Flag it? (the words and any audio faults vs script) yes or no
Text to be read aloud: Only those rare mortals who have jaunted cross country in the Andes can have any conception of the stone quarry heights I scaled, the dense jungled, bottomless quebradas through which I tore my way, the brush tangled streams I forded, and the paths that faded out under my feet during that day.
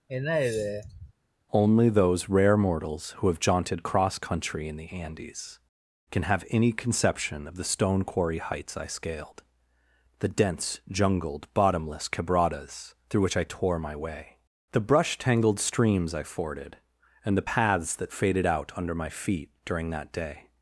yes